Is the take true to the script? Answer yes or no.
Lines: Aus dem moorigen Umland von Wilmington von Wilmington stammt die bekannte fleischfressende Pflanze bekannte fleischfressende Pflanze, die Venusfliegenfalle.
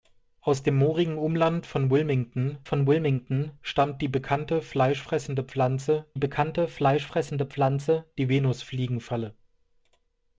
yes